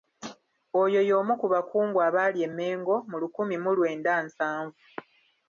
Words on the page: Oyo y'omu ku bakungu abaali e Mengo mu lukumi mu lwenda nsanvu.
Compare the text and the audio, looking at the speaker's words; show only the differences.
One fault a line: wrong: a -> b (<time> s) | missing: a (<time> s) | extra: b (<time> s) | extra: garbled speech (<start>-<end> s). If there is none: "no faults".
no faults